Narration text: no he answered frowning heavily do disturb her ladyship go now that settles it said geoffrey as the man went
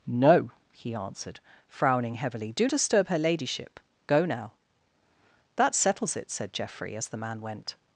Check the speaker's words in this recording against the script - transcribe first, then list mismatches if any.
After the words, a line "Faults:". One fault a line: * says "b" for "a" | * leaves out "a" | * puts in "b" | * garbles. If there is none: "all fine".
no he answered frowning heavily do disturb her ladyship go now that settles it said geoffrey as the man went
Faults:
all fine